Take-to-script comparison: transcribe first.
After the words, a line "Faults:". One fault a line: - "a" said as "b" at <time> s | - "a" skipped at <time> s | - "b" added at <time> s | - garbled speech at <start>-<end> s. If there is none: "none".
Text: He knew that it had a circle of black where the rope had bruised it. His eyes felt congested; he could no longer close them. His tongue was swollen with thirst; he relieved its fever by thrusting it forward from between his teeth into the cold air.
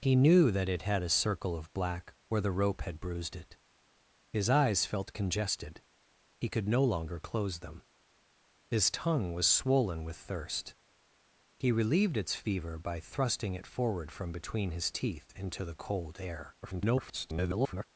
He knew that it had a circle of black where the rope had bruised it. His eyes felt congested; he could no longer close them. His tongue was swollen with thirst; he relieved its fever by thrusting it forward from between his teeth into the cold air. [garbled]
Faults:
- garbled speech at 16.6-17.8 s